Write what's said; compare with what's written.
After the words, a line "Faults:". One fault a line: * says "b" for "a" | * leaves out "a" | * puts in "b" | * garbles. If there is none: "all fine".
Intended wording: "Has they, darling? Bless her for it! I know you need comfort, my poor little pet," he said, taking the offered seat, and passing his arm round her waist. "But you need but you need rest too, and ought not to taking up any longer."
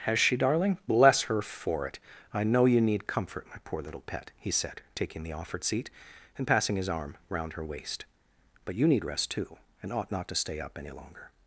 "Has she, darling? Bless her for it! I know you need comfort, my poor little pet," he said, taking the offered seat, and passing his arm round her waist. "But you need rest too, and ought not to stay up any longer."
Faults:
* says "she" for "they"
* leaves out "but you need"
* says "stay" for "taking"